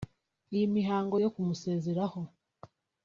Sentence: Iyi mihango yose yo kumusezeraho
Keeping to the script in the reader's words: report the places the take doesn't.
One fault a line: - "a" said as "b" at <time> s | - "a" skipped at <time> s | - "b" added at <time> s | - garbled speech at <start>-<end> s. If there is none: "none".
- "yose" skipped at 1.1 s